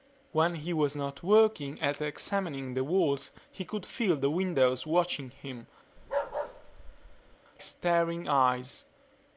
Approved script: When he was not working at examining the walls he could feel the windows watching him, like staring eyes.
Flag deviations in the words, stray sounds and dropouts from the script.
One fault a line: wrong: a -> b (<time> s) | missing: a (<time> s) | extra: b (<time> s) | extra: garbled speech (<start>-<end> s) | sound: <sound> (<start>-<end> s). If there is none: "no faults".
missing: like (5.7 s)
sound: bark (6.0-7.4 s)